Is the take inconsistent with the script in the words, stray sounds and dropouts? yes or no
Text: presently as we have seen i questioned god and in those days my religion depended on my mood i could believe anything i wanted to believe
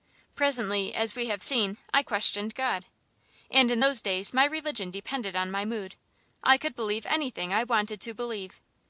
no